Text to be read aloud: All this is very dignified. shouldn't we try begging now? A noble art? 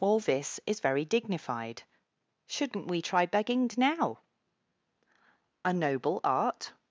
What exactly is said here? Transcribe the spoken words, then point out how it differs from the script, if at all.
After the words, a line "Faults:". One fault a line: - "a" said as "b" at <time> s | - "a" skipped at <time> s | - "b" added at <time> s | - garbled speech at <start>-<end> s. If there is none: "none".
All this is very dignified. shouldn't we try begging now? A noble art?
Faults:
none